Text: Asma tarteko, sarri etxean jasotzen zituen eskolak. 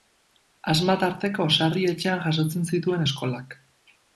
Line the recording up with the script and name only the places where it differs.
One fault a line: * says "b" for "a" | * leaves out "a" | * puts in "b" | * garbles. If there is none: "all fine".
all fine